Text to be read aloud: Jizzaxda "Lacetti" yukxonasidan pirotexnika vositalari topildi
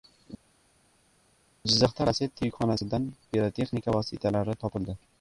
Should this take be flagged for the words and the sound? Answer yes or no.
no